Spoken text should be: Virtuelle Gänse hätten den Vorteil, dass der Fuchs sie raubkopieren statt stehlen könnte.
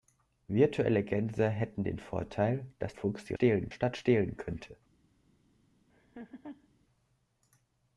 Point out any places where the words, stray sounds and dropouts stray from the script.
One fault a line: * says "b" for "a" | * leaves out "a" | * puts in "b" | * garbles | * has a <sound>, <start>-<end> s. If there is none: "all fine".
* leaves out "der"
* says "stehlen" for "raubkopieren"
* has a laugh, 5.9-6.7 s